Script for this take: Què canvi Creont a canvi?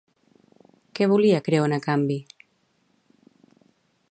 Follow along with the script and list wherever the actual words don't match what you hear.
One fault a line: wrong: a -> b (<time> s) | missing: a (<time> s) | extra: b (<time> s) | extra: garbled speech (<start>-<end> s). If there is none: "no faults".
wrong: canvi -> volia (1.1 s)